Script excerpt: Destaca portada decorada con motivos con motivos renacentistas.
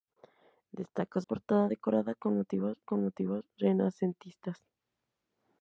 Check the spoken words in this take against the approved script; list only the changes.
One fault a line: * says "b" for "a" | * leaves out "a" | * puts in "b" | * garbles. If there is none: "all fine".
all fine